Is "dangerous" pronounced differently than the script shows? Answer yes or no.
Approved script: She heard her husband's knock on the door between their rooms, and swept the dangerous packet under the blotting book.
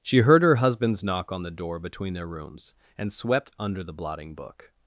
yes